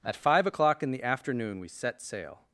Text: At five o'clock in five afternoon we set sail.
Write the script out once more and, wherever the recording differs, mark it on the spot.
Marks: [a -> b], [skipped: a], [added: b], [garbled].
At five o'clock in [five -> the] afternoon we set sail.